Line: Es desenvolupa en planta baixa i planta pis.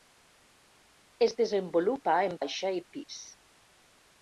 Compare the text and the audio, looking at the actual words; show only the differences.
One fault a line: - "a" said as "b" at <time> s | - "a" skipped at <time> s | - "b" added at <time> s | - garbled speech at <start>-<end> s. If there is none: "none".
- "planta" skipped at 2.4 s
- "planta" skipped at 2.8 s